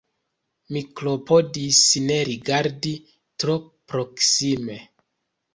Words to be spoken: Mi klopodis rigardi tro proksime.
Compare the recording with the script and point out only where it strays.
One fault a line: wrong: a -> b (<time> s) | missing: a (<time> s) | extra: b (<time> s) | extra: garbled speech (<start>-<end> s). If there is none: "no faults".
extra: ne (2.0 s)